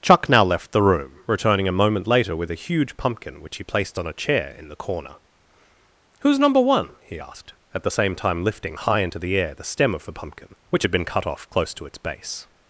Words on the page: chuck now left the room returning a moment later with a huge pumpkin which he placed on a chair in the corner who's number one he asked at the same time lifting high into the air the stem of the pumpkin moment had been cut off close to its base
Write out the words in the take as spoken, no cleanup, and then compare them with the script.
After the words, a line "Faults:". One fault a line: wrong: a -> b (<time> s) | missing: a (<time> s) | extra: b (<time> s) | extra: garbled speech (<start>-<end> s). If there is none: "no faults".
chuck now left the room returning a moment later with a huge pumpkin which he placed on a chair in the corner who's number one he asked at the same time lifting high into the air the stem of the pumpkin which had been cut off close to its base
Faults:
wrong: moment -> which (10.7 s)